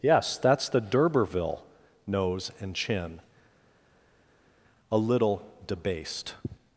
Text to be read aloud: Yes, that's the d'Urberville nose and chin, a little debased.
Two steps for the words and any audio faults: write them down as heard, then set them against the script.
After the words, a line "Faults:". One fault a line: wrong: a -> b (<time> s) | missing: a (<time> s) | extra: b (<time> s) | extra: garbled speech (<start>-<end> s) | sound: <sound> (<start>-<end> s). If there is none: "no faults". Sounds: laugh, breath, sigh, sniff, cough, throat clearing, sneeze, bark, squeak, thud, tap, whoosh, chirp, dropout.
Yes, that's the d'Urberville nose and chin, a little debased.
Faults:
no faults